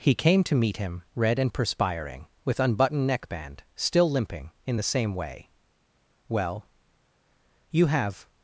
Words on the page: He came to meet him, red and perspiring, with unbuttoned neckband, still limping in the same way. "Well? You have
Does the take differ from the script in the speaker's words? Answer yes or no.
no